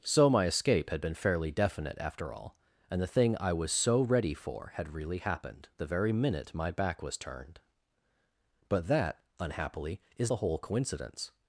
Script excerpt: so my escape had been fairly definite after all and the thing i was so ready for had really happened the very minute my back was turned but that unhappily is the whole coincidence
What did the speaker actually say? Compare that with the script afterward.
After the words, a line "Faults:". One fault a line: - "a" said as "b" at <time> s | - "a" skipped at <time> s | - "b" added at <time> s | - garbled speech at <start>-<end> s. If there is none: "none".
so my escape had been fairly definite after all and the thing i was so ready for had really happened the very minute my back was turned but that unhappily is the whole coincidence
Faults:
none